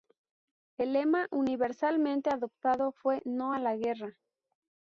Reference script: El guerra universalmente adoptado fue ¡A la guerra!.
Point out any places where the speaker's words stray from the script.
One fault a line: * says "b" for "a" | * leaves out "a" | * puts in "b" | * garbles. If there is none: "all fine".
* says "lema" for "guerra"
* puts in "No"